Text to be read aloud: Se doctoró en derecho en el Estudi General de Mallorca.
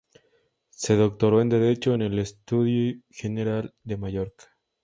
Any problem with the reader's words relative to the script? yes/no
no